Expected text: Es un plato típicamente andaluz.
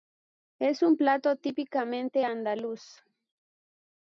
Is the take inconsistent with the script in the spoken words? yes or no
no